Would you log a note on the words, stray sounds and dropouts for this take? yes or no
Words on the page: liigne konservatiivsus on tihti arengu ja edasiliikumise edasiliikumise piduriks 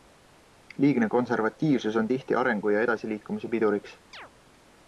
yes